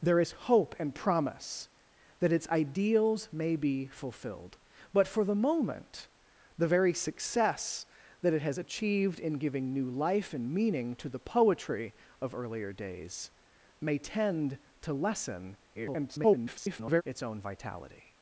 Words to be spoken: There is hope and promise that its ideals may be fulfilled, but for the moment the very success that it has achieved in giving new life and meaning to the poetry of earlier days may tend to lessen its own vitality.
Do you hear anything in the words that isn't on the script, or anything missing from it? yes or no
yes